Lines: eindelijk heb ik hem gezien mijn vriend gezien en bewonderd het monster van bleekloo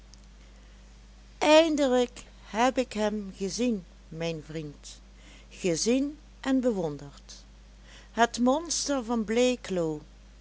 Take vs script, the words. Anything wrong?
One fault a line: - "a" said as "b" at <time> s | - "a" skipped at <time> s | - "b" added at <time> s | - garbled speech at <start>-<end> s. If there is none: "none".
none